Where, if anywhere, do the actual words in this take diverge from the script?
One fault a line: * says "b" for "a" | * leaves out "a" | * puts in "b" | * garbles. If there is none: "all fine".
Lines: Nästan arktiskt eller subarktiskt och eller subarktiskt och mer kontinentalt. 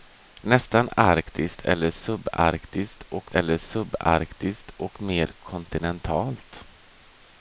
all fine